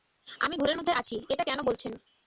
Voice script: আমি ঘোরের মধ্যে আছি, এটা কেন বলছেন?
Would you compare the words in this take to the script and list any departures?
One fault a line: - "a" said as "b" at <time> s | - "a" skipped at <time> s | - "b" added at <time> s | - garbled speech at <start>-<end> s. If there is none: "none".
none